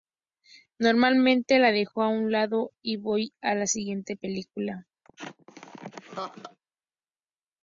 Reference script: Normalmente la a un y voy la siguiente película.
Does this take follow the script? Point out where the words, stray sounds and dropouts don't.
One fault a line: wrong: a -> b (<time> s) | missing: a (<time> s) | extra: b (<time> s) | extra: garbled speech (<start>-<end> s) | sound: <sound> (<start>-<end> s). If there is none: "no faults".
extra: dejo (1.7 s)
extra: lado (2.3 s)
extra: a (3.4 s)
sound: laugh (5.0-6.6 s)